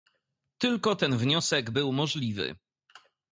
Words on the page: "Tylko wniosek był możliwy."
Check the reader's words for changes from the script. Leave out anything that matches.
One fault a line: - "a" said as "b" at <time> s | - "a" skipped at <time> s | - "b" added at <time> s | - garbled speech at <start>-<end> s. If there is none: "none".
- "ten" added at 0.9 s